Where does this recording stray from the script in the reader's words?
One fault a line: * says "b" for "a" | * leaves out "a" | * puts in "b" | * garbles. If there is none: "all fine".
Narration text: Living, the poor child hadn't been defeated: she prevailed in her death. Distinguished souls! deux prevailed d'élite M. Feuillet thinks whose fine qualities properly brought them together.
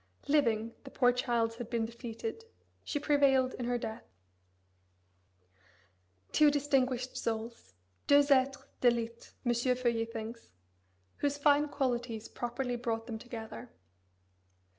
* says "had" for "hadn't"
* puts in "Two"
* says "êtres" for "prevailed"